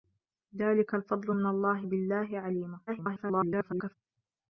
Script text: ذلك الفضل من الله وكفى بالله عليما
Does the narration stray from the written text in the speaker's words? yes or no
yes